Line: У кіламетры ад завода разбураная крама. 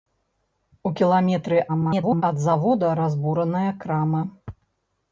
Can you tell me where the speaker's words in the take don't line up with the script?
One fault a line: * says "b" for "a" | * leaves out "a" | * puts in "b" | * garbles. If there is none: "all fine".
* garbles